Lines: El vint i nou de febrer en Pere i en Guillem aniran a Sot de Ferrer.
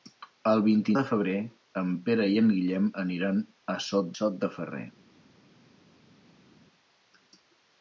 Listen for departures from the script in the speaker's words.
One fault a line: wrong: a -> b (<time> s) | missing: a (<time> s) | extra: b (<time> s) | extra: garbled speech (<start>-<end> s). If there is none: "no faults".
missing: nou (0.9 s)
extra: Sot (4.2 s)